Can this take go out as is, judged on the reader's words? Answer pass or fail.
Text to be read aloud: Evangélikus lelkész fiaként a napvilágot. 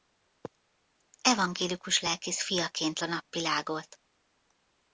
pass